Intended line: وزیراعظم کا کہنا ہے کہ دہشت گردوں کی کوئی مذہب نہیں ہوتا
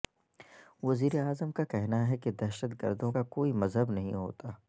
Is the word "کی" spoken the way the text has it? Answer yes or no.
no